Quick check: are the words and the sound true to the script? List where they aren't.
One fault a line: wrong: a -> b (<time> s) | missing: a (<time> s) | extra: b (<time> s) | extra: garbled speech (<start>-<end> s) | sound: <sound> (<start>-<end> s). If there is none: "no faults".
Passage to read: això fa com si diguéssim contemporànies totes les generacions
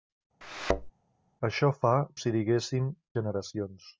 sound: thud (0.4-0.9 s)
missing: com (1.9 s)
missing: contemporànies totes les (2.9 s)